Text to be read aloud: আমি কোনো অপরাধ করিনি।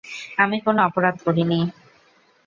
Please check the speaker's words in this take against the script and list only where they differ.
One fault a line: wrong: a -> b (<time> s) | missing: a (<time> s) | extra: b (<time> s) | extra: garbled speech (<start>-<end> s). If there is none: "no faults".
no faults